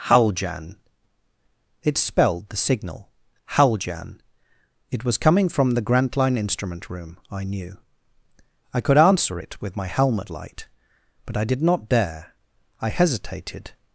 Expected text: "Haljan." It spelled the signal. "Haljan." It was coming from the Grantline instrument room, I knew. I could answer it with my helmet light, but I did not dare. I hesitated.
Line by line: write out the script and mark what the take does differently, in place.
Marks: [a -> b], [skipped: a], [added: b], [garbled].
"Haljan." It spelled the signal. "Haljan." It was coming from the Grantline instrument room, I knew. I could answer it with my helmet light, but I did not dare. I hesitated.